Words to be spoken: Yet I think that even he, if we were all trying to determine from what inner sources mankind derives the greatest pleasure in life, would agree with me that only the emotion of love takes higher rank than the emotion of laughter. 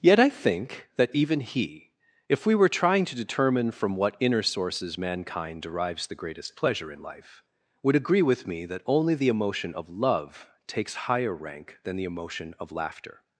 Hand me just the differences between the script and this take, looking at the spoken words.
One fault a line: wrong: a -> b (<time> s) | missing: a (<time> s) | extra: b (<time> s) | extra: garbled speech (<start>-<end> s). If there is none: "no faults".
missing: all (2.7 s)